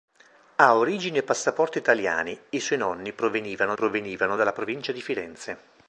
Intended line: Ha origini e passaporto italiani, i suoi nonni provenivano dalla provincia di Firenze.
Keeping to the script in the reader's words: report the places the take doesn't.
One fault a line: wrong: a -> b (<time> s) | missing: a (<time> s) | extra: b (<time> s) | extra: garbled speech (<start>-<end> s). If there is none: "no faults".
extra: provenivano (3.7 s)